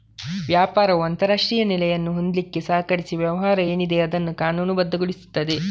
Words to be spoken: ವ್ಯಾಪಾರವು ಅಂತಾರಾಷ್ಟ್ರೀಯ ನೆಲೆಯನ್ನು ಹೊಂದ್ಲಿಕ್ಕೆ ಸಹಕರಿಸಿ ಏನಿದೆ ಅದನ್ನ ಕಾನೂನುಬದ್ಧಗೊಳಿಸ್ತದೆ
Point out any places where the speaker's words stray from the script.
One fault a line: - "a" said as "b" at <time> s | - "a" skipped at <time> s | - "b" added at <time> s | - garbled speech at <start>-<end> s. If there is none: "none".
- "ವ್ಯವಹಾರ" added at 3.2 s